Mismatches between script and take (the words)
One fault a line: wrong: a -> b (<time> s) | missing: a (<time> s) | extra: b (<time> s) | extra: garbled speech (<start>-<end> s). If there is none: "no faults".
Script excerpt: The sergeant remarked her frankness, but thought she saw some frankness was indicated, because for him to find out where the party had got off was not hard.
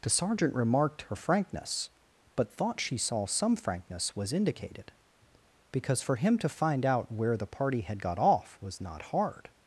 no faults